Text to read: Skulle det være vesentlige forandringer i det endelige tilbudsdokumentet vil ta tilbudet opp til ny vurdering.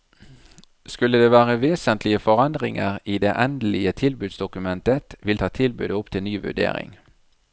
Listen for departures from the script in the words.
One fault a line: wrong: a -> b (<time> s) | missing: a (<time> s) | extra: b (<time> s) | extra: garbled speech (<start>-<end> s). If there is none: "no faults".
no faults